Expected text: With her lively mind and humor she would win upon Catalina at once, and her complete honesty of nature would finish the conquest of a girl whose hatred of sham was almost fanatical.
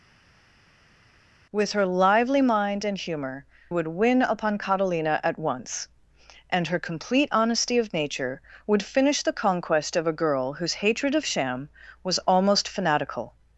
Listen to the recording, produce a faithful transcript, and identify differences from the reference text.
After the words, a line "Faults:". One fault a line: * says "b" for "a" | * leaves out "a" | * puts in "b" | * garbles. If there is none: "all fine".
With her lively mind and humor would win upon Catalina at once, and her complete honesty of nature would finish the conquest of a girl whose hatred of sham was almost fanatical.
Faults:
* leaves out "she"